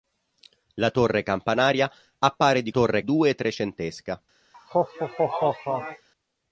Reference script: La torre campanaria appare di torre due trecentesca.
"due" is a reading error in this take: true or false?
false